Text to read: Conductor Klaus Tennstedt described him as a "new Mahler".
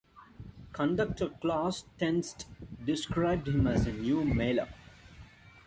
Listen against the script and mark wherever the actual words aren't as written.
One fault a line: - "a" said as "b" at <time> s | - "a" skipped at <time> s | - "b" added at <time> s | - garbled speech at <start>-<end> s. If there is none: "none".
none